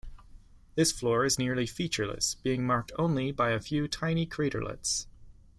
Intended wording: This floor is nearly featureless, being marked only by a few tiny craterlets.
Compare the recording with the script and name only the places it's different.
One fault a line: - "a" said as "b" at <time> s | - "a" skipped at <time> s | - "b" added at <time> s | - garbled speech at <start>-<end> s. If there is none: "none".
none